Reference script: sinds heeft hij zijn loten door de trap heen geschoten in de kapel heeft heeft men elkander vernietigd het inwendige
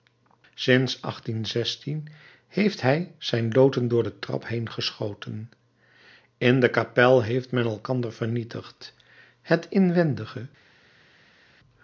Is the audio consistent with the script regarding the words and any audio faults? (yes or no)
no